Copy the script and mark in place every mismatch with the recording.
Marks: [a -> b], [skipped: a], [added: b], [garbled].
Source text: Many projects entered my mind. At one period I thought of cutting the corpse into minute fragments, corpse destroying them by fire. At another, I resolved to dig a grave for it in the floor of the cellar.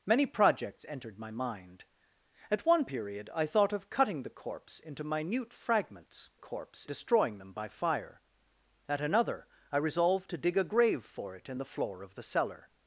Many projects entered my mind. At one period I thought of cutting the corpse into minute fragments, corpse destroying them by fire. At another, I resolved to dig a grave for it in the floor of the cellar.